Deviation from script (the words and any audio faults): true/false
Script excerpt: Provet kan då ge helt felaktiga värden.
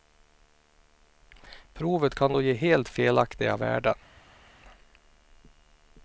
false